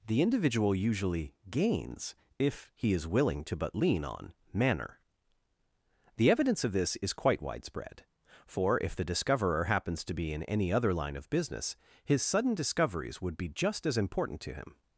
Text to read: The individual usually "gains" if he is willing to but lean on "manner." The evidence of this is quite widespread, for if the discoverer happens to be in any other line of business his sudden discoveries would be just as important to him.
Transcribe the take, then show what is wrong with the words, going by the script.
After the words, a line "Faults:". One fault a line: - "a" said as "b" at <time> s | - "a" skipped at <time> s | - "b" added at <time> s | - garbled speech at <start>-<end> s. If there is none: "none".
The individual usually "gains" if he is willing to but lean on "manner." The evidence of this is quite widespread, for if the discoverer happens to be in any other line of business his sudden discoveries would be just as important to him.
Faults:
none